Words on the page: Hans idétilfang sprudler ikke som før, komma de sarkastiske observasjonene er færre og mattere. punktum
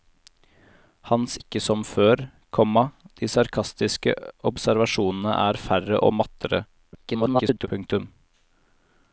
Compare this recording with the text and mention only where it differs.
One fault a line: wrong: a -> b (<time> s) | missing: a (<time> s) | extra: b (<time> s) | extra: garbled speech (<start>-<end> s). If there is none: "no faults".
missing: idétilfang sprudler (1.4 s)
extra: garbled speech (6.9-7.7 s)